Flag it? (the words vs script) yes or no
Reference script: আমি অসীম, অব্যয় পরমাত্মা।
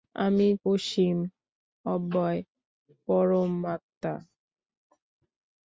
no